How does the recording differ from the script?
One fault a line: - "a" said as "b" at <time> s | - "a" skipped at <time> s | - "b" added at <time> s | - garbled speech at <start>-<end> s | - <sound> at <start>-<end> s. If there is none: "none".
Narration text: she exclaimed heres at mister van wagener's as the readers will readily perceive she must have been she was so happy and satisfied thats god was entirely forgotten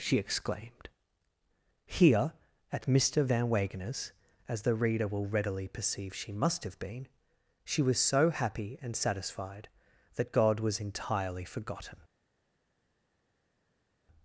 - "heres" said as "here" at 1.9 s
- "readers" said as "reader" at 4.7 s
- "thats" said as "that" at 10.1 s